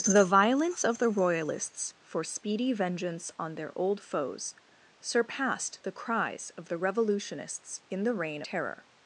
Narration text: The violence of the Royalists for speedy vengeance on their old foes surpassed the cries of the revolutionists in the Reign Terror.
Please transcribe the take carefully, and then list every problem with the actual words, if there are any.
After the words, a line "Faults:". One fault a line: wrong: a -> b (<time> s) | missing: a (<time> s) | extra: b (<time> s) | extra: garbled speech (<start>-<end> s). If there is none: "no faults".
The violence of the Royalists for speedy vengeance on their old foes surpassed the cries of the revolutionists in the Reign Terror.
Faults:
no faults